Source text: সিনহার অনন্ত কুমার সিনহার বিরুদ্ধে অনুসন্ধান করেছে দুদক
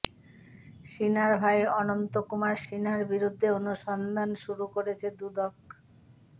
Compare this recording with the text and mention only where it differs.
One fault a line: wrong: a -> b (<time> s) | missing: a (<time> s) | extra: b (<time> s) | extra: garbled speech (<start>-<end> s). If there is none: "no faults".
extra: ভাই (1.4 s)
extra: শুরু (4.4 s)